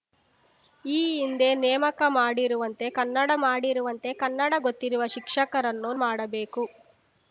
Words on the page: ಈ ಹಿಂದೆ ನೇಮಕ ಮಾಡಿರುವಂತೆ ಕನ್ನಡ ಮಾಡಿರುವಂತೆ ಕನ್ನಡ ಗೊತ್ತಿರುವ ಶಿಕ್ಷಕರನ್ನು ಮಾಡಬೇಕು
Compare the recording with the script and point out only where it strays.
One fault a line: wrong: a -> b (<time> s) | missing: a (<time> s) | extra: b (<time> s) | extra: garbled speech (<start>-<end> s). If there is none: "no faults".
no faults